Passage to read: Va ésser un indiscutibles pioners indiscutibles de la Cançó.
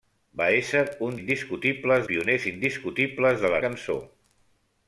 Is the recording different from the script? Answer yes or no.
no